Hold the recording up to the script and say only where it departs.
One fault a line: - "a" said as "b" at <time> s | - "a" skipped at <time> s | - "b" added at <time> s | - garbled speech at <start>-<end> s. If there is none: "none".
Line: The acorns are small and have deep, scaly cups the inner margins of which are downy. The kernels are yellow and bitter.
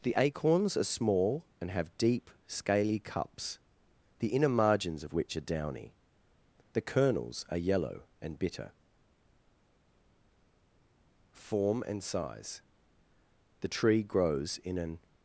- "Form and size The tree grows in an" added at 11.3 s